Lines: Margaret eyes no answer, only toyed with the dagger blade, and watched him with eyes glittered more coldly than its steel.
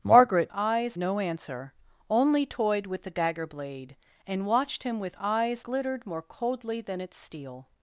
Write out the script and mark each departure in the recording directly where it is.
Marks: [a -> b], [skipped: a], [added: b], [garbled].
Margaret eyes no answer, only toyed with the dagger blade, and watched him with eyes glittered more coldly than its steel.